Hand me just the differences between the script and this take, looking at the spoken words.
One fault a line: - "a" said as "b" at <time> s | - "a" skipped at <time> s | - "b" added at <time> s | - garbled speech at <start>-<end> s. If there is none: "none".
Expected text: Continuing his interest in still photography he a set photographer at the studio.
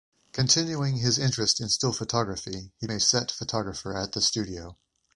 none